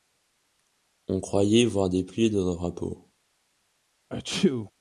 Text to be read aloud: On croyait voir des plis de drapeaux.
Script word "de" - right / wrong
right